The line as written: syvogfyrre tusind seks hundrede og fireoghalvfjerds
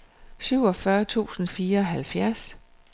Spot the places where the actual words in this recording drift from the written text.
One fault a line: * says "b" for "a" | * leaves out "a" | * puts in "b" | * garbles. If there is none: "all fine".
* leaves out "seks hundrede og"